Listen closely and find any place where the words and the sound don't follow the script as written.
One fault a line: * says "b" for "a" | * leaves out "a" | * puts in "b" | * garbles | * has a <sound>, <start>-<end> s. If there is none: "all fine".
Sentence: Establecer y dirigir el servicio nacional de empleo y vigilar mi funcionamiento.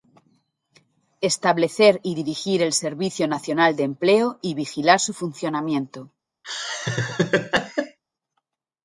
* says "su" for "mi"
* has a laugh, 6.4-8.0 s